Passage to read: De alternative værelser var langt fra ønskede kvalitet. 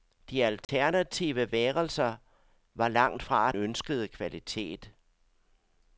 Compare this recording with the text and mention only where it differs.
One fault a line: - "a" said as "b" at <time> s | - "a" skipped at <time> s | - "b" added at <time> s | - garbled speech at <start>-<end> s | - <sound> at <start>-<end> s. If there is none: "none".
- dropout at 0.6-0.7 s